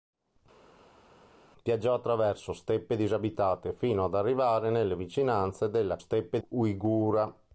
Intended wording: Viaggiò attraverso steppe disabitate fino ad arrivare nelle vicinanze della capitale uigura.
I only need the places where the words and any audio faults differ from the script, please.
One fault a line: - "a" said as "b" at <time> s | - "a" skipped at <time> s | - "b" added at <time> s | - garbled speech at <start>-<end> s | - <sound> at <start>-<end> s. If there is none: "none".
- "capitale" said as "steppe" at 5.9 s